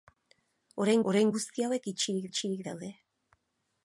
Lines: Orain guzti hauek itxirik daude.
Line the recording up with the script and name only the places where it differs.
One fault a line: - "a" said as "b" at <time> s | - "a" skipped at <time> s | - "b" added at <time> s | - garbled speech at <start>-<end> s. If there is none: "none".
- "orain" added at 1.1 s
- "itxirik" added at 2.3 s